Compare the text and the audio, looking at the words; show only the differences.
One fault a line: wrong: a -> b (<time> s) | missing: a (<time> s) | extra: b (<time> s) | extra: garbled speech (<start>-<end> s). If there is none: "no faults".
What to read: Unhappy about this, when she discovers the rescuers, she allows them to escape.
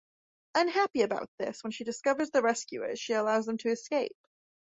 no faults